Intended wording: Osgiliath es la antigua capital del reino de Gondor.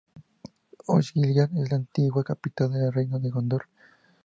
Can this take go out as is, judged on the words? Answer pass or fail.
pass